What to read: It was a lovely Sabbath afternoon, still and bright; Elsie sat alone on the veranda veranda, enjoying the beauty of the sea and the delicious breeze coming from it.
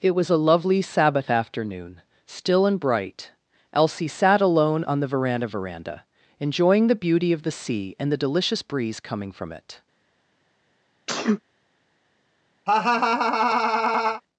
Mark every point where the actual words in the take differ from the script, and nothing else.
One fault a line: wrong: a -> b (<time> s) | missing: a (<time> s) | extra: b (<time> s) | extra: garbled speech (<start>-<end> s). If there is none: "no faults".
no faults